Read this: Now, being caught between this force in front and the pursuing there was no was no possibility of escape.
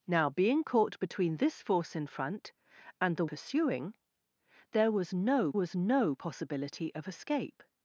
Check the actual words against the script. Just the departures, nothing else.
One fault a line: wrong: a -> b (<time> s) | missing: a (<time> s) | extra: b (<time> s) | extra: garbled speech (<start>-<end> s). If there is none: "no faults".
no faults